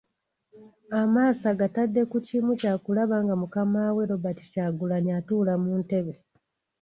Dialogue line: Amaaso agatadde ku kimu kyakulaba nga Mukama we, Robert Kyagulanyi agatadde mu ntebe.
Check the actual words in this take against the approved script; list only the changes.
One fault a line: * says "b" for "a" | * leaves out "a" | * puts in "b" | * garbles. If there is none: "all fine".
* says "atuula" for "agatadde"